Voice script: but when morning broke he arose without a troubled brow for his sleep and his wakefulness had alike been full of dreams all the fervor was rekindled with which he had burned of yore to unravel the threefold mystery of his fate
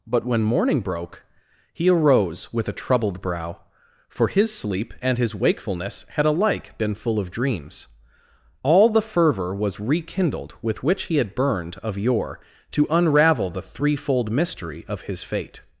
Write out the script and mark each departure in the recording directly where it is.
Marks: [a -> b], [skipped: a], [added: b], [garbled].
but when morning broke he arose [without -> with] a troubled brow for his sleep and his wakefulness had alike been full of dreams all the fervor was rekindled with which he had burned of yore to unravel the threefold mystery of his fate